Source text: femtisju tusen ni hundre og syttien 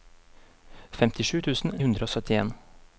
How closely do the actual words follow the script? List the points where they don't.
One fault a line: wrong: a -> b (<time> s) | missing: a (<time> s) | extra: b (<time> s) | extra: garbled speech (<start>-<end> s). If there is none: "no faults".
missing: ni (1.7 s)